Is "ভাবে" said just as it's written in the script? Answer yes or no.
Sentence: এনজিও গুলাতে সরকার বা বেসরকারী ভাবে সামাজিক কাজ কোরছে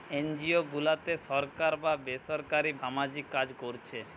no